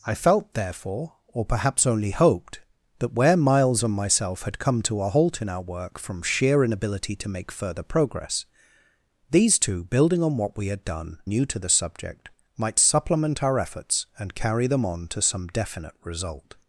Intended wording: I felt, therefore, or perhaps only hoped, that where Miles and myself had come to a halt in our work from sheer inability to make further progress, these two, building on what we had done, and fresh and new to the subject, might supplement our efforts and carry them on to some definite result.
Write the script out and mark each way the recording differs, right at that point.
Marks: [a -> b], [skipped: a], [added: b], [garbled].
I felt, therefore, or perhaps only hoped, that where Miles and myself had come to a halt in our work from sheer inability to make further progress, these two, building on what we had done, [skipped: and fresh and] new to the subject, might supplement our efforts and carry them on to some definite result.